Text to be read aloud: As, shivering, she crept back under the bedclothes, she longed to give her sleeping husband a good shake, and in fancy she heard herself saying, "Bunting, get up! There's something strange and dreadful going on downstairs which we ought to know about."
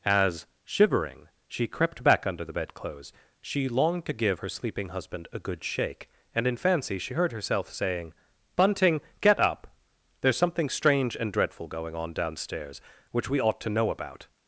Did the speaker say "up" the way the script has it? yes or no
yes